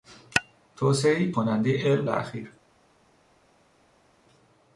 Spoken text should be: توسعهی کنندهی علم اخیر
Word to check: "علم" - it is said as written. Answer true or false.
true